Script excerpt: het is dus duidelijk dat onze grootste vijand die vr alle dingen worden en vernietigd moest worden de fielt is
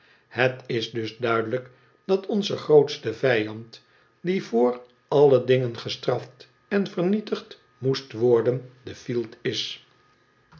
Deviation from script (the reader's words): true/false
true